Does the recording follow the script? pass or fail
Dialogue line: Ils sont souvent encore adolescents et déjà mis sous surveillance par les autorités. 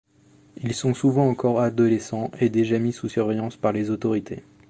pass